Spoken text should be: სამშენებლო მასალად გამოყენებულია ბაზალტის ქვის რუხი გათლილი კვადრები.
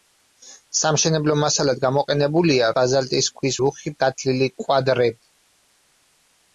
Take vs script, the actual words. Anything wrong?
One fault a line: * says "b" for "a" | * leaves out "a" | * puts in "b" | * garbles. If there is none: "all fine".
all fine